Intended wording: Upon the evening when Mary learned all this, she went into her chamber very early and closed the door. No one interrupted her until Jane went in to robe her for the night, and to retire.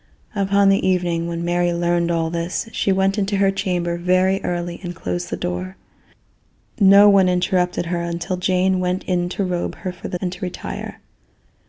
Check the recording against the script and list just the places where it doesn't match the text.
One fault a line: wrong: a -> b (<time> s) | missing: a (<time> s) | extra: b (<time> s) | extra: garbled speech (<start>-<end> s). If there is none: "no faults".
missing: night (10.2 s)